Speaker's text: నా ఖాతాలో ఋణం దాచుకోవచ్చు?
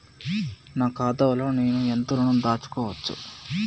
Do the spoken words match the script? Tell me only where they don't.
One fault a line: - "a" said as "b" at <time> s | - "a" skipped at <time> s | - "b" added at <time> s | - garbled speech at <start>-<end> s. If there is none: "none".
- "నేను ఎంత" added at 1.5 s